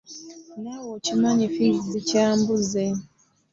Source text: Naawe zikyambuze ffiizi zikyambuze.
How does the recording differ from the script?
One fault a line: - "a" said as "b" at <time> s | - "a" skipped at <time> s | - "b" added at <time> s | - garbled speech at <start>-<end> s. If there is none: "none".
- "zikyambuze" said as "okimanyi" at 1.0 s